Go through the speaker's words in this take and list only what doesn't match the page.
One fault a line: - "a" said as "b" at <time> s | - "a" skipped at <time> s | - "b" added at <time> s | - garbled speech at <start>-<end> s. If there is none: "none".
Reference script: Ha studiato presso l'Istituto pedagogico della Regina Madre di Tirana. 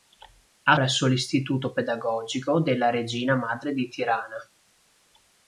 - "studiato" skipped at 0.8 s